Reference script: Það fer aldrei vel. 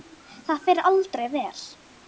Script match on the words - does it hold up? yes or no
yes